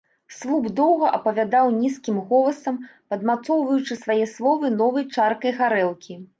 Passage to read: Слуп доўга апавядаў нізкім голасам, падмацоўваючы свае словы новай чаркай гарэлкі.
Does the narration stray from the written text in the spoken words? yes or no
no